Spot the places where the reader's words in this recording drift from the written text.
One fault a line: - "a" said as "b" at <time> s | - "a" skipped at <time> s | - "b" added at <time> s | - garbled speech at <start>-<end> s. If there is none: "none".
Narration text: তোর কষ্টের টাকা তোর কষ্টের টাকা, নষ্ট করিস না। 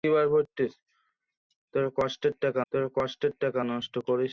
none